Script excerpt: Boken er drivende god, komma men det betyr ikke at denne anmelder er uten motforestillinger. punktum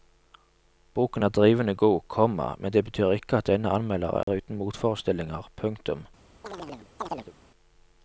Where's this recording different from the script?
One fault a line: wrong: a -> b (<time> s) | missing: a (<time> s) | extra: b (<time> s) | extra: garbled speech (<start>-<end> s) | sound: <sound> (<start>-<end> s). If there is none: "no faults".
sound: dropout (4.2-4.3 s)
sound: chirp (6.4-7.3 s)